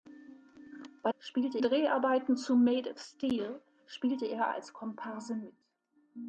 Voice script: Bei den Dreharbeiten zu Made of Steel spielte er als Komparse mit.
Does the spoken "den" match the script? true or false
false